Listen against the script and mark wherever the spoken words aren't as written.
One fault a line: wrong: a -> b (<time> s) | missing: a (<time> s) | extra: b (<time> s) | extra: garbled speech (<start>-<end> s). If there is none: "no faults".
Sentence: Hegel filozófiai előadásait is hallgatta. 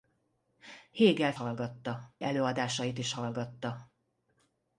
wrong: filozófiai -> hallgatta (1.4 s)